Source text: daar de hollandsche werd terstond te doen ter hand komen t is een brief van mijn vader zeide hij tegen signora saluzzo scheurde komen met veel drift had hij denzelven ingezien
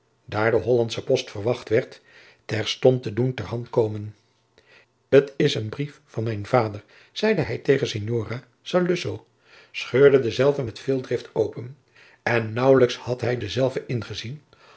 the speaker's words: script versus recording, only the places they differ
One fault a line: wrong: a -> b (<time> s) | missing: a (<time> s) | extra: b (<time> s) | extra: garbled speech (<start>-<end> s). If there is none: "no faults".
extra: post verwacht (1.0 s)
wrong: komen -> denzelven (10.2 s)
extra: open en naauwelijks (11.3 s)